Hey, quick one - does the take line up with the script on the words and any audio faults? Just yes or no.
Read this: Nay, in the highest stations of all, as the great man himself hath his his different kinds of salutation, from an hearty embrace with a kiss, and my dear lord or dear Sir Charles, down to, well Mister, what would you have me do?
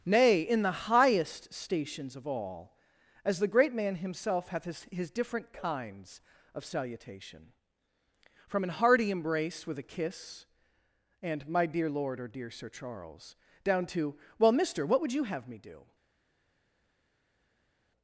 yes